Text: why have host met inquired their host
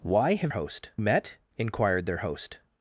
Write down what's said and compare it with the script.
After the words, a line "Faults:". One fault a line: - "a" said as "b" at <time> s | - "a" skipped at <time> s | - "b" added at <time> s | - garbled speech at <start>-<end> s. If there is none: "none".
why have host met inquired their host
Faults:
none